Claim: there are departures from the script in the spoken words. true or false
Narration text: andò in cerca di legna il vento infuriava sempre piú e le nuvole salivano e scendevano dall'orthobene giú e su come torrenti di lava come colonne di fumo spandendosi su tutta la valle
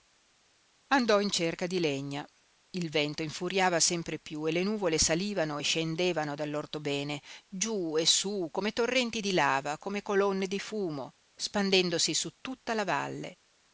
false